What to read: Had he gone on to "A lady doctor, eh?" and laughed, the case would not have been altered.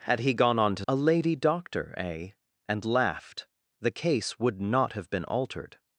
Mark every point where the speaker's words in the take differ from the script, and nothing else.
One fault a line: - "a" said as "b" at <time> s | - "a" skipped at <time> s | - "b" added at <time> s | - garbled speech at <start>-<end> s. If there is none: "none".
none